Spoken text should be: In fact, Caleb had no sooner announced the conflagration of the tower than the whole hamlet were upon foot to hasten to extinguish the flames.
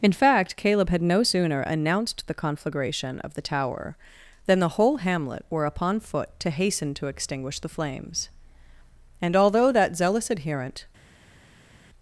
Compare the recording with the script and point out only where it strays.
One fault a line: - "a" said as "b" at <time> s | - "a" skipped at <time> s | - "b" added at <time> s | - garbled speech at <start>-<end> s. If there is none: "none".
- "And although that zealous adherent" added at 9.2 s